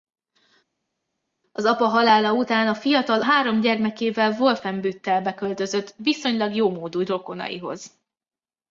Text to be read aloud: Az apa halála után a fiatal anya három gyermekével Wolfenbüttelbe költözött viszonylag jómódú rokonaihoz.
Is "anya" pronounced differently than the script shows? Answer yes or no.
yes